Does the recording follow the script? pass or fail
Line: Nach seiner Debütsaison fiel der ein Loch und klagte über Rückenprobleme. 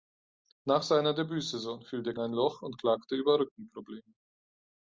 pass